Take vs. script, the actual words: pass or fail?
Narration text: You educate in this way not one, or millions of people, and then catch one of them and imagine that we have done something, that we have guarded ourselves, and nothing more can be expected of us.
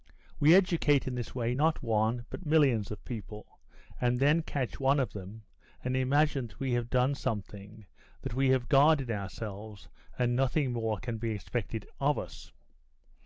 fail